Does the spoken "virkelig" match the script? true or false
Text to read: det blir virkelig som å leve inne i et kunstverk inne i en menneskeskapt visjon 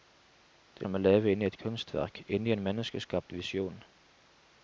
false